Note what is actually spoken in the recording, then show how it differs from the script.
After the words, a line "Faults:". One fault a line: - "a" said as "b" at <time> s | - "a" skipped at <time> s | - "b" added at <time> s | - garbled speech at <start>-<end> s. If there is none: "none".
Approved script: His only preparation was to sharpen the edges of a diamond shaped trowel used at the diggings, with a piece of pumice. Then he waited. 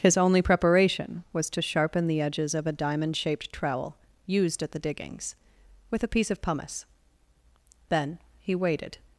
His only preparation was to sharpen the edges of a diamond shaped trowel used at the diggings, with a piece of pumice. Then he waited.
Faults:
none